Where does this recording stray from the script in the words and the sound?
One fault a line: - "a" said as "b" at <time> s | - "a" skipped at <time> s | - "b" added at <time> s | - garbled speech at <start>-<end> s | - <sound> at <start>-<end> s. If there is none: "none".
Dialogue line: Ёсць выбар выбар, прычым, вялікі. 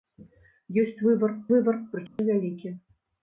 - dropout at 2.1-2.2 s